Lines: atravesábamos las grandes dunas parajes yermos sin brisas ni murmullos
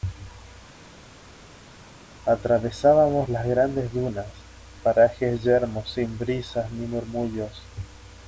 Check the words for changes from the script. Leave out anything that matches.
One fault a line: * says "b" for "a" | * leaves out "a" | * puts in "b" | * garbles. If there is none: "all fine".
all fine